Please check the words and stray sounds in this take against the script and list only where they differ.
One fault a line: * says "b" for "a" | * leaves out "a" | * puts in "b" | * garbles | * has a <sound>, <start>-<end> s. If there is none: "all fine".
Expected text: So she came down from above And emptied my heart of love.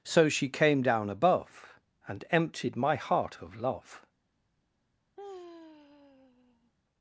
* leaves out "from"
* has a sigh, 5.2-6.7 s